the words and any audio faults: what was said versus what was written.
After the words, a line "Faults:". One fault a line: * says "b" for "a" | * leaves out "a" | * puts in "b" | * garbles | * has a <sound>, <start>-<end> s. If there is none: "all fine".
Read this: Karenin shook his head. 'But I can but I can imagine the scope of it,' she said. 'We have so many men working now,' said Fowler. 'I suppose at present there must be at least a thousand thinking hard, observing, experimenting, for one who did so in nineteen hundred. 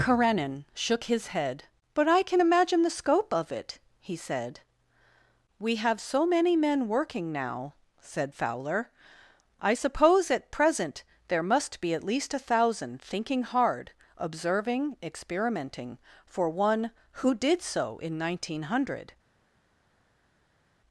Karenin shook his head. 'But I can imagine the scope of it,' he said. 'We have so many men working now,' said Fowler. 'I suppose at present there must be at least a thousand thinking hard, observing, experimenting, for one who did so in nineteen hundred.
Faults:
* leaves out "but I can"
* says "he" for "she"